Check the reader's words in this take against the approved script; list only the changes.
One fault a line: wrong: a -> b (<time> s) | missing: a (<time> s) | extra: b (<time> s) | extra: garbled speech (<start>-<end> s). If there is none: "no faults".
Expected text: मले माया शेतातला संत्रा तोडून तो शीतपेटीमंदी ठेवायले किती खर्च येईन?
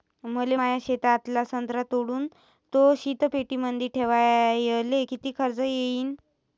no faults